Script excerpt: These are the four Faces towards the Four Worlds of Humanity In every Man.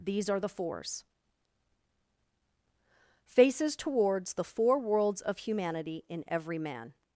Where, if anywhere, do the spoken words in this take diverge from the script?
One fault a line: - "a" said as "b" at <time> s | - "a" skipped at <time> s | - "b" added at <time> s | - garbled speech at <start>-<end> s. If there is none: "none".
- "four" said as "fours" at 0.5 s